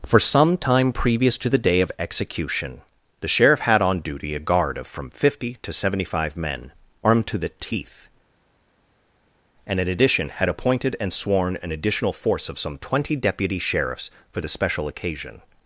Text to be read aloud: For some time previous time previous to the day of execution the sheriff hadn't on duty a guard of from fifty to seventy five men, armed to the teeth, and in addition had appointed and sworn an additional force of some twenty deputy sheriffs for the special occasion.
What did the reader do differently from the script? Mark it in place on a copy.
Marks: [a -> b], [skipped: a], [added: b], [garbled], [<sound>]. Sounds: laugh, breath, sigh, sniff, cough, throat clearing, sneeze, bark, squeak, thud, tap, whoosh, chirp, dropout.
For some time previous [skipped: time previous] to the day of execution the sheriff [hadn't -> had] on duty a guard of from fifty to seventy five men, armed to the teeth, and in addition had appointed and sworn an additional force of some twenty deputy sheriffs for the special occasion.